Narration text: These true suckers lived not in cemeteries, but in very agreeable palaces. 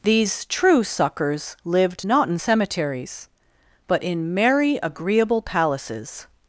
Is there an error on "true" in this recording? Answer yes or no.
no